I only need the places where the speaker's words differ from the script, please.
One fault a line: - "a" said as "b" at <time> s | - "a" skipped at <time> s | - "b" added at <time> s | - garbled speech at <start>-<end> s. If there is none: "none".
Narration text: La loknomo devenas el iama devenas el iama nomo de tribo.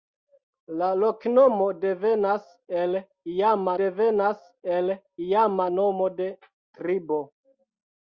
none